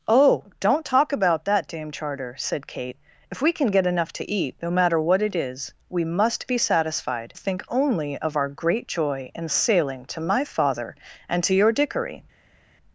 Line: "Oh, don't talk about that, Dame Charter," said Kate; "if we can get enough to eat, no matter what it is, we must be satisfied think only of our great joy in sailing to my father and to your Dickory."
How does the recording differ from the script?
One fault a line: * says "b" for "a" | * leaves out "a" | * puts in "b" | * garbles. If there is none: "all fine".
all fine